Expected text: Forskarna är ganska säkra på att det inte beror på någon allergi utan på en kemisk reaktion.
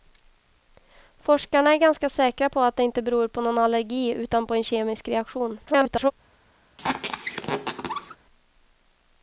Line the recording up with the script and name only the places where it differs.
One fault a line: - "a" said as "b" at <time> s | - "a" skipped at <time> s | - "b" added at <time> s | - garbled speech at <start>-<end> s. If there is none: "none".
- garbled speech at 5.7-6.1 s